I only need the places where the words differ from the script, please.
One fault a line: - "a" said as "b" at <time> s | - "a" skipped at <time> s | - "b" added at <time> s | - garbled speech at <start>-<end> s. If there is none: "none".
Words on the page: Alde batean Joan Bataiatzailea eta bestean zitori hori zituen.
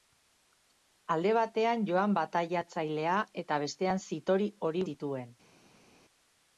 none